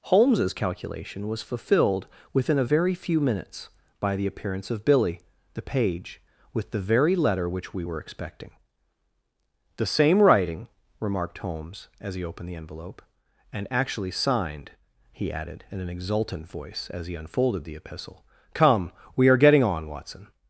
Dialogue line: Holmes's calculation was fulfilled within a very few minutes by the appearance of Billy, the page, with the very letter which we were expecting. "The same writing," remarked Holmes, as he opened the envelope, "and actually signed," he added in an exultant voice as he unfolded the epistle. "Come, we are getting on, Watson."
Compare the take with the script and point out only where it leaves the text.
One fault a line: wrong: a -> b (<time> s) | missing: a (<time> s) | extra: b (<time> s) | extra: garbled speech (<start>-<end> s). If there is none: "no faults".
no faults